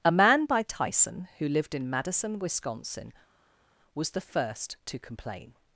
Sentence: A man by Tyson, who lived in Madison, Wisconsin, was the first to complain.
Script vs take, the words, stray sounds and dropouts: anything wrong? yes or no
no